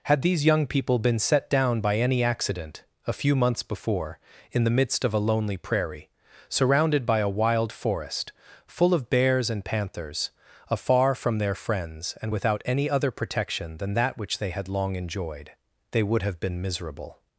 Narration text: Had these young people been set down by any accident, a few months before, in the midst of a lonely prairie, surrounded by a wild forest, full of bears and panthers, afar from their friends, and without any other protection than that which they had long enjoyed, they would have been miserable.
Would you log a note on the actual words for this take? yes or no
no